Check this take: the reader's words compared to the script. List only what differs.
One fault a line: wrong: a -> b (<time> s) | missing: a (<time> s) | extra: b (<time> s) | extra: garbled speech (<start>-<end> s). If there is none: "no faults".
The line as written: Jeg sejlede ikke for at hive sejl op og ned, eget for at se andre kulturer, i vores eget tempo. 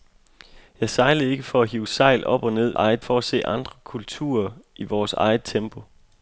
no faults